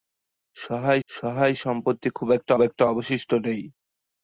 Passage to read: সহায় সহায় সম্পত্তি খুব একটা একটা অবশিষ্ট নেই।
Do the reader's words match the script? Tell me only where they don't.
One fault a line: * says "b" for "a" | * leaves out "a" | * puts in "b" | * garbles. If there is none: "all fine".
all fine